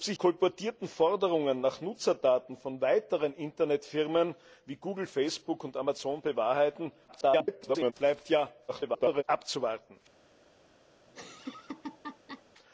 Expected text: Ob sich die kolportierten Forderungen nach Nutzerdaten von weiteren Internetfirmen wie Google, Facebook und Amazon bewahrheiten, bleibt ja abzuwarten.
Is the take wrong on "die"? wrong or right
wrong